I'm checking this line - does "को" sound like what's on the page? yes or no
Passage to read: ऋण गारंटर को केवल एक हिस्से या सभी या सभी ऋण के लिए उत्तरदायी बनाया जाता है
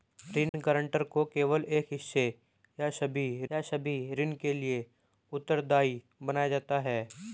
yes